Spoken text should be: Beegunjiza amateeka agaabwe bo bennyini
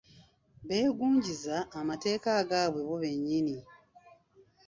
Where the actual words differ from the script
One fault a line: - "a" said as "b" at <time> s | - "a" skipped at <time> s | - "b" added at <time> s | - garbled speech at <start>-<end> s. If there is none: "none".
none